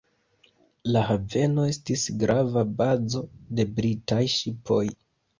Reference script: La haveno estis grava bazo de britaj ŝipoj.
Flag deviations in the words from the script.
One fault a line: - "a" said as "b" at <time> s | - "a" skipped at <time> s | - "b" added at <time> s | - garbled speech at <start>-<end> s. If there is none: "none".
none